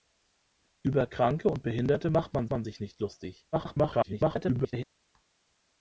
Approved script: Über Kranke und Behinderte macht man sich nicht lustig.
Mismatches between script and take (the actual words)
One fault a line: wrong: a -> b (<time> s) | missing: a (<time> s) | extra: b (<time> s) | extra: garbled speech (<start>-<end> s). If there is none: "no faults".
extra: man (2.5 s)
extra: garbled speech (3.5-4.8 s)